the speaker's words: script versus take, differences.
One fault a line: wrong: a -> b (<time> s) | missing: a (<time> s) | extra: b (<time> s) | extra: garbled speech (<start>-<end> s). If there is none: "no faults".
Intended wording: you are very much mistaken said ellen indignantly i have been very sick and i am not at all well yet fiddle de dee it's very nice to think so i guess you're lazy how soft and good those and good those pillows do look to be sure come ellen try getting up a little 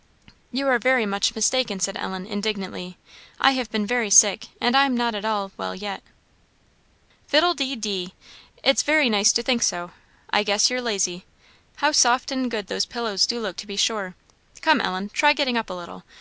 missing: and good those (12.9 s)